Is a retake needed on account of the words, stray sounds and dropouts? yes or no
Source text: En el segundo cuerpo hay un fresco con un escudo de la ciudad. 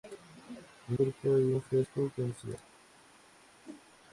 yes